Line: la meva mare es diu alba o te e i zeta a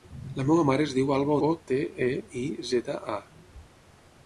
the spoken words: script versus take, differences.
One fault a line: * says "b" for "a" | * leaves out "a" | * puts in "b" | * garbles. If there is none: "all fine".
all fine